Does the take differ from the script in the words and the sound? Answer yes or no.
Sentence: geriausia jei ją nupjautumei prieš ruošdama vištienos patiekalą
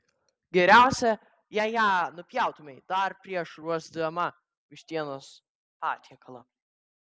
yes